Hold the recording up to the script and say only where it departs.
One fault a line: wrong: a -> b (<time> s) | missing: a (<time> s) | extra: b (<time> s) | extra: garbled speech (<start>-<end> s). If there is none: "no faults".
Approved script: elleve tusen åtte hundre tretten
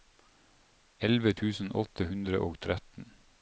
extra: og (2.5 s)